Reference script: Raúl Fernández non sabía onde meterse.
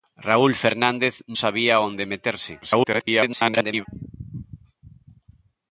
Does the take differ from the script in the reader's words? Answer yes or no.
yes